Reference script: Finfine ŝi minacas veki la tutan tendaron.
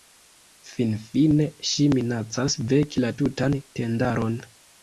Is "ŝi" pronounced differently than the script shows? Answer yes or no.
no